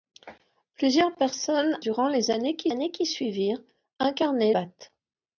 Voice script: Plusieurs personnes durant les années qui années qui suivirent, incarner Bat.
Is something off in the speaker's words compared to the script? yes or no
no